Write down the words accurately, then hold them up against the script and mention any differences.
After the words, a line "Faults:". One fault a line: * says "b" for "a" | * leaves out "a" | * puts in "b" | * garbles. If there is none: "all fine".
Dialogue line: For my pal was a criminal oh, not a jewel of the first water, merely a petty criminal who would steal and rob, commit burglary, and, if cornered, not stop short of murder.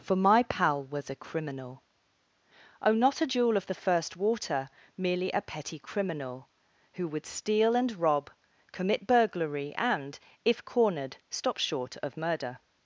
For my pal was a criminal oh, not a jewel of the first water, merely a petty criminal who would steal and rob, commit burglary, and, if cornered, stop short of murder.
Faults:
* leaves out "not"